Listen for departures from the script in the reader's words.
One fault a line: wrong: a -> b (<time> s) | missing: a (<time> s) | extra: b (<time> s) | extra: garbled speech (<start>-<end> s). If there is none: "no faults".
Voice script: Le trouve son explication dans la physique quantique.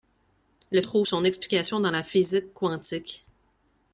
no faults